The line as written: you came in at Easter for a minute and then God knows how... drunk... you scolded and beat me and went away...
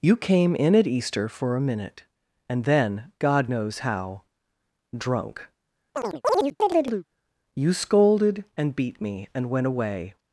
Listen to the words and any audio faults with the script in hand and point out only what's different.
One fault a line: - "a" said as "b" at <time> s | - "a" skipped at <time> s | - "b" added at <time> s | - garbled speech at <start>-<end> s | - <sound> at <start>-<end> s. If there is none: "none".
- chirp at 5.9-7.1 s